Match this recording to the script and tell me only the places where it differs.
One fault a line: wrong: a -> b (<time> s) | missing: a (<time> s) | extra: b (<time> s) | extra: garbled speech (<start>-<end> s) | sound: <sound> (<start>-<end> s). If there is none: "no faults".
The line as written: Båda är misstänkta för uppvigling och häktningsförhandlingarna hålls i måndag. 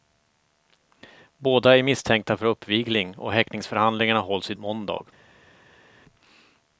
no faults